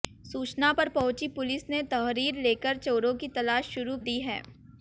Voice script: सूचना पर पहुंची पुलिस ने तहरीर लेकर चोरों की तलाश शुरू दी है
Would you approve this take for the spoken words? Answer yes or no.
yes